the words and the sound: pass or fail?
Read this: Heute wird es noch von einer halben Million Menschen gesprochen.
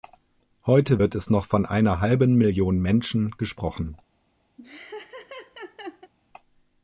fail